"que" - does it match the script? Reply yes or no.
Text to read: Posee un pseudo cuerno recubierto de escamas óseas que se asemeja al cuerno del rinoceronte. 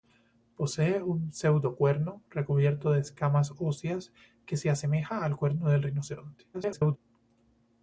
yes